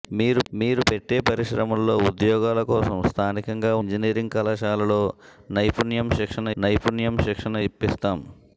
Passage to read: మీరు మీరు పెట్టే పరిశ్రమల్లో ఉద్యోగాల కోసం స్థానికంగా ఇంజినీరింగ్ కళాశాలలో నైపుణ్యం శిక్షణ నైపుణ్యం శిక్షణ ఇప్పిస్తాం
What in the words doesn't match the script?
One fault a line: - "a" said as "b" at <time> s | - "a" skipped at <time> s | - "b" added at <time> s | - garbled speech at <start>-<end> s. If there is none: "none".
none